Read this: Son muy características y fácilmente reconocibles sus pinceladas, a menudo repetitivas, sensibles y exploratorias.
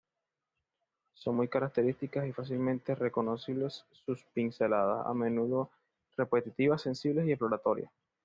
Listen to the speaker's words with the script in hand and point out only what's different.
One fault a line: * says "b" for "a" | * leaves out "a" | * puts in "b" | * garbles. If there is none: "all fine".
all fine